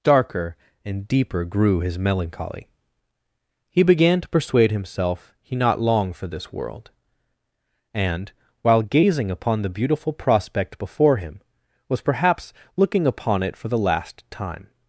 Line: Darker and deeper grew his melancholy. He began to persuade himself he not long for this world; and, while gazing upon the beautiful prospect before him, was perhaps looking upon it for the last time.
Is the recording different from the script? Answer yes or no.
no